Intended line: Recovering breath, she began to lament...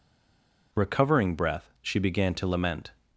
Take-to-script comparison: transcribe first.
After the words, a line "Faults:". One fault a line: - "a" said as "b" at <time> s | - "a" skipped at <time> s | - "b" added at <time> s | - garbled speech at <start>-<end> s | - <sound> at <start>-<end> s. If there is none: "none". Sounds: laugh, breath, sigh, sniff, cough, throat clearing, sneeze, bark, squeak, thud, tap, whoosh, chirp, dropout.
Recovering breath, she began to lament...
Faults:
none